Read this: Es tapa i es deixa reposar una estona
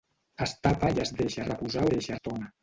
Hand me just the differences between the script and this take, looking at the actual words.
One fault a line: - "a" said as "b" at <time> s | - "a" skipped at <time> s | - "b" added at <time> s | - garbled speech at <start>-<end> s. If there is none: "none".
- "una" said as "deixa" at 1.9 s